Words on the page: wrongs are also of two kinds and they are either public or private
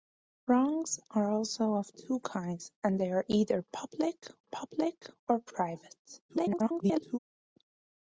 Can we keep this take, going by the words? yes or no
no